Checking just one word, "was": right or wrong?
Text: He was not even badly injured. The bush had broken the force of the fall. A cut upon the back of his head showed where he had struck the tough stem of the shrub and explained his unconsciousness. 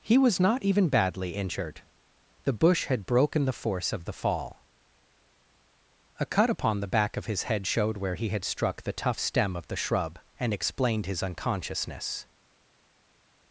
right